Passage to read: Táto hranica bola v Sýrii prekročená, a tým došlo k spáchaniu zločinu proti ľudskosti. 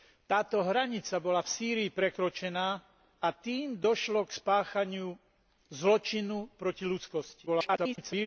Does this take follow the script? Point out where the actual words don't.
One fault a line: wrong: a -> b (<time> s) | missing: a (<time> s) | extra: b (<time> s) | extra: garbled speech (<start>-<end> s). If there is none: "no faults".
extra: garbled speech (7.5-8.3 s)